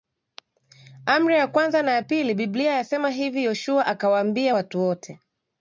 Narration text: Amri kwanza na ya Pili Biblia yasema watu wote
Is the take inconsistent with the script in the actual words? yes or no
yes